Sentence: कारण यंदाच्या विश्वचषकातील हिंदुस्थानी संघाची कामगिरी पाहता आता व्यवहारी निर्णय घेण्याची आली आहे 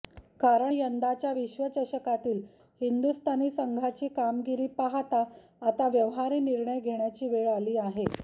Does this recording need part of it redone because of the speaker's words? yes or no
yes